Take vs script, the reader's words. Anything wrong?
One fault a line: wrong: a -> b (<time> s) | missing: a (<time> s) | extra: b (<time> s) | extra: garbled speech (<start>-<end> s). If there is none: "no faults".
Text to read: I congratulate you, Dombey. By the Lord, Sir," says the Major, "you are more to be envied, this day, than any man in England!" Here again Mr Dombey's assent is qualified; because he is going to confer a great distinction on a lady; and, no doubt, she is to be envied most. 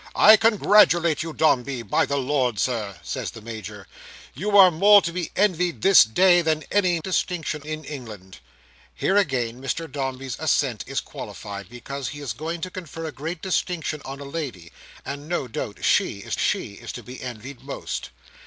wrong: man -> distinction (7.0 s)
extra: she is (16.4 s)